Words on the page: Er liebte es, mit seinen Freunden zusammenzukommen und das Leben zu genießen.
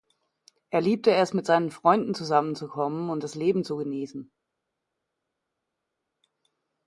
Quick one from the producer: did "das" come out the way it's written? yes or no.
yes